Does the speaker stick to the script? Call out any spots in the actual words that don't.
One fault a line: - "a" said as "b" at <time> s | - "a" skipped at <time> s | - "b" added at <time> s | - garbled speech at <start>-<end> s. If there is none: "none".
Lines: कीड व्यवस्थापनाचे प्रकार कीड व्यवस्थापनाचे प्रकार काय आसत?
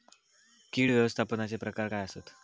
- "कीड व्यवस्थापनाचे प्रकार" skipped at 1.9 s